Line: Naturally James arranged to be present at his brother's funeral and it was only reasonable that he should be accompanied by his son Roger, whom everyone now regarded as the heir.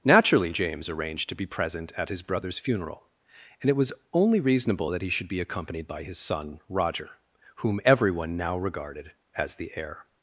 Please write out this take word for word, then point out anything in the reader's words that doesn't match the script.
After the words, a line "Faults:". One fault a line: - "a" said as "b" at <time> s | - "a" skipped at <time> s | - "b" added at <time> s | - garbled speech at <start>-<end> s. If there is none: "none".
Naturally James arranged to be present at his brother's funeral and it was only reasonable that he should be accompanied by his son Roger, whom everyone now regarded as the heir.
Faults:
none